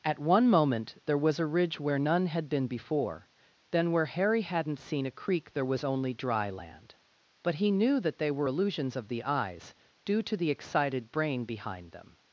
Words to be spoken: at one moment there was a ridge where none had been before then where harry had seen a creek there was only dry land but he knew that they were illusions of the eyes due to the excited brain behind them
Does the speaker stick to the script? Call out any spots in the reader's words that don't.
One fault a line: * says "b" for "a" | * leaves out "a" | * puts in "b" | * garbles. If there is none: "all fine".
* says "hadn't" for "had"